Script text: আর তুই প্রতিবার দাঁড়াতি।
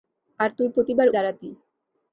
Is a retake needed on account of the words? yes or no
no